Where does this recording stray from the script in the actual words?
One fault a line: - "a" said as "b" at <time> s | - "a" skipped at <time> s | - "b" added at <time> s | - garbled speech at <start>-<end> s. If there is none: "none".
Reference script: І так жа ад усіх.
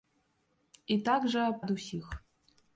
none